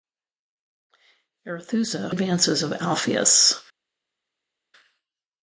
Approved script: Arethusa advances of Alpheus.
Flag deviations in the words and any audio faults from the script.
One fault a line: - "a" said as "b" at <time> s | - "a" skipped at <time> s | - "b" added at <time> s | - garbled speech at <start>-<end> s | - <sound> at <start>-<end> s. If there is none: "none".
none